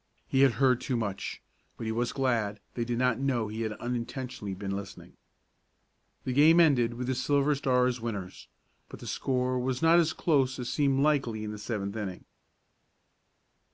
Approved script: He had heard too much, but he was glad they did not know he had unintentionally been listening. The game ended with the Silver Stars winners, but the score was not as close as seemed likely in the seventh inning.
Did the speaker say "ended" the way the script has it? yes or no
yes